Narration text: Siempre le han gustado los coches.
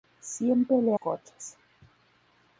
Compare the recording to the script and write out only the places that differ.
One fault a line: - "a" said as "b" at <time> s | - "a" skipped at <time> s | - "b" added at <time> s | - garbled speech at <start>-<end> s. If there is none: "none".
- "han gustado los" skipped at 0.9 s